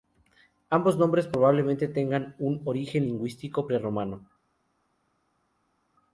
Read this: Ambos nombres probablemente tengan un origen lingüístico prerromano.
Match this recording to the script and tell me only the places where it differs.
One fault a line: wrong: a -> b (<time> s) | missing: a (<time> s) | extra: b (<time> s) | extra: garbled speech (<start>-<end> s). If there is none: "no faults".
no faults